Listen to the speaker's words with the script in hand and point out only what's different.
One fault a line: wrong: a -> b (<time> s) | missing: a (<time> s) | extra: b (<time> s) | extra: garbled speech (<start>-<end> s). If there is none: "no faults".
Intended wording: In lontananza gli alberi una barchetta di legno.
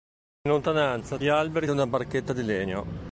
no faults